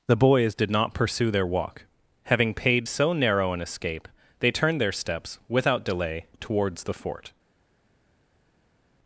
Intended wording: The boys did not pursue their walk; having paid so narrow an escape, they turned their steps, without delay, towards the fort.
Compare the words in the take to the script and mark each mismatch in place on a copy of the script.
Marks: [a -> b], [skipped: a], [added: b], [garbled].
The boys did not pursue their walk; having paid so narrow an escape, they turned their steps, without delay, towards the fort.